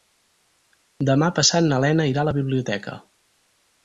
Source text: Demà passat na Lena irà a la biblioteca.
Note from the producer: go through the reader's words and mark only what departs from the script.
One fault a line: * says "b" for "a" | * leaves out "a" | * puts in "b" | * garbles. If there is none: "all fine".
all fine